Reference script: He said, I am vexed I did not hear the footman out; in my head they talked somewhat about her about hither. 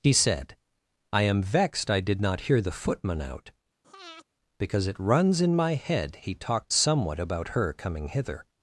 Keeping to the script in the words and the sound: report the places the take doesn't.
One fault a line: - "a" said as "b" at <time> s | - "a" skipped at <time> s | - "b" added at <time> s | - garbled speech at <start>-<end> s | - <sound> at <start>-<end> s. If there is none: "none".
- breath at 3.8-4.2 s
- "because it runs" added at 4.6 s
- "they" said as "he" at 6.2 s
- "about" said as "coming" at 7.7 s